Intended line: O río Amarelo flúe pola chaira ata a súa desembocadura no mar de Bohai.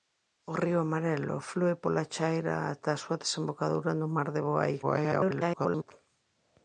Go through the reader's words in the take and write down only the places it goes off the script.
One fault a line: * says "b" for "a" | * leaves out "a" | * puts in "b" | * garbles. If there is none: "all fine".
* garbles